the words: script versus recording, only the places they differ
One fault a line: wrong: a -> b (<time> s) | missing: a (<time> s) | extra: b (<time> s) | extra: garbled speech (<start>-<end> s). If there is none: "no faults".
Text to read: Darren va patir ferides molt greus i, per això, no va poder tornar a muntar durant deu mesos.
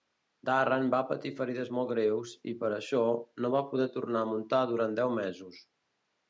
no faults